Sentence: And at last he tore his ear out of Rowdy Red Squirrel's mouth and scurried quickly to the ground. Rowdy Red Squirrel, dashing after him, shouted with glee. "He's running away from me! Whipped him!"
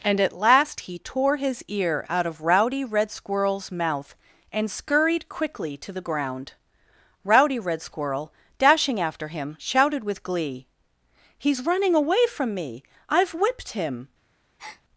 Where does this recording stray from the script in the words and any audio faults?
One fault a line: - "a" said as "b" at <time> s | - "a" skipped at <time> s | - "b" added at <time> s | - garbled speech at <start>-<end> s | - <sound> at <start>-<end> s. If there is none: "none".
- "I've" added at 13.1 s
- breath at 14.6-14.8 s